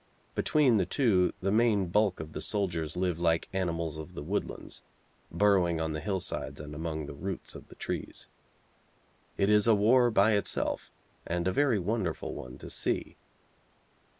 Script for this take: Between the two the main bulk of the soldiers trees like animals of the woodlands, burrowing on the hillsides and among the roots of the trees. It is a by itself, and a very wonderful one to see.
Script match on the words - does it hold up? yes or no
no